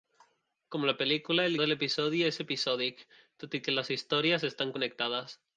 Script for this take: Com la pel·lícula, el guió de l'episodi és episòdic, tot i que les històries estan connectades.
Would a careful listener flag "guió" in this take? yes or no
yes